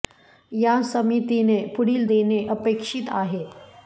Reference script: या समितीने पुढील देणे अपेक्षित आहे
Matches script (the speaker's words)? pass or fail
pass